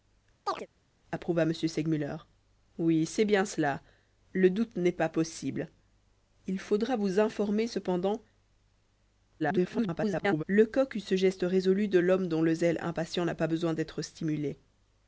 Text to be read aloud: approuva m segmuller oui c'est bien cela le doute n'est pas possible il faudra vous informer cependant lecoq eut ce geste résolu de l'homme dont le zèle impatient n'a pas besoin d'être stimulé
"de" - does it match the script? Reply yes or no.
yes